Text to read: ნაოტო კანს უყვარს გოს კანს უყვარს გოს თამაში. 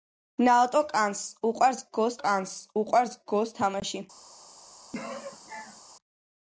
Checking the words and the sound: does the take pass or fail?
fail